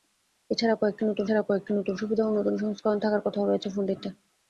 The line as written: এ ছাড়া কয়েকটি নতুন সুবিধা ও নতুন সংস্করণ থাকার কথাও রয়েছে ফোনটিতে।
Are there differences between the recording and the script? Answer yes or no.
yes